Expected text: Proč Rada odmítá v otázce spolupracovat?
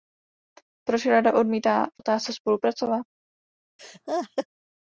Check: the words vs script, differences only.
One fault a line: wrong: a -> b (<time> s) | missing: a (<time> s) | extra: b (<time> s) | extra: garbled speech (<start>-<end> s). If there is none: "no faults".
no faults